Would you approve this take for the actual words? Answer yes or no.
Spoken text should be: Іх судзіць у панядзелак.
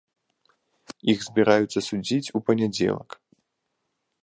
no